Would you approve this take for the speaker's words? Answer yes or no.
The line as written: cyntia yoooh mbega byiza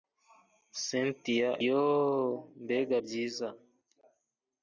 yes